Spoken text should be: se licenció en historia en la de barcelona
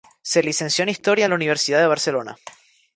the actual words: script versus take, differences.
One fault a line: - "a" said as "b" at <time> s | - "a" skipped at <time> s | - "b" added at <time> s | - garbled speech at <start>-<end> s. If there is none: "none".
- "universidad" added at 1.3 s